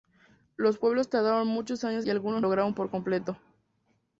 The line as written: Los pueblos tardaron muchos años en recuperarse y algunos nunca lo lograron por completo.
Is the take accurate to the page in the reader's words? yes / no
no